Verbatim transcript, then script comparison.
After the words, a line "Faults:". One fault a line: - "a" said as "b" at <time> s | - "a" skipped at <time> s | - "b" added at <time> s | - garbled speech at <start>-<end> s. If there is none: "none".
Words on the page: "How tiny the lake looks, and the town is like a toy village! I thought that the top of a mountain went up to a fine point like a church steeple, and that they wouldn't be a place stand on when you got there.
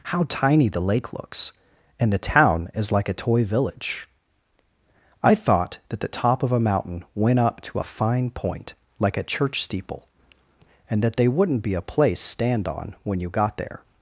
"How tiny the lake looks, and the town is like a toy village! I thought that the top of a mountain went up to a fine point like a church steeple, and that they wouldn't be a place stand on when you got there.
Faults:
none